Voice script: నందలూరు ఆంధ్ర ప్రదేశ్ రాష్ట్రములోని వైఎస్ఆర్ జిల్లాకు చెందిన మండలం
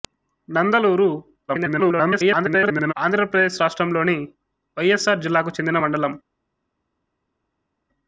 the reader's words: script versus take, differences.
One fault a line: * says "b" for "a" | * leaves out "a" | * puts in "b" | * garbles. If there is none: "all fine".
* garbles